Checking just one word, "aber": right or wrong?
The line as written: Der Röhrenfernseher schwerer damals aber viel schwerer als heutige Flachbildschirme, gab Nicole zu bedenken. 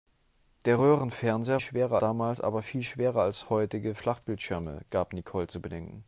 right